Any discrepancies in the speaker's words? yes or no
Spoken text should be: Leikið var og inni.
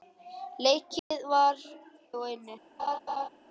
no